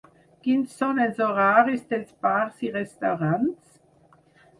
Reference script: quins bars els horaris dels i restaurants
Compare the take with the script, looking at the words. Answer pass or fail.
fail